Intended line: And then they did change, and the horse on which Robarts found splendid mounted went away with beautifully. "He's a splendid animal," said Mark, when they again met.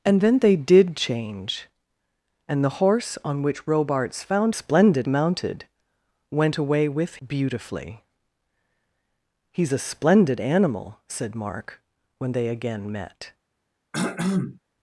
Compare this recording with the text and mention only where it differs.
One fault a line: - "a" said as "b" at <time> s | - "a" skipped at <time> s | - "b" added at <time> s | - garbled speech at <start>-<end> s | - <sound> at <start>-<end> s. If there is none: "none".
- throat clearing at 13.9-14.6 s